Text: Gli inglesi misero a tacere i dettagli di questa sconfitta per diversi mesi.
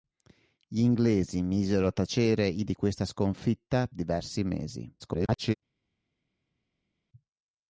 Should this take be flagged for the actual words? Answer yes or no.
yes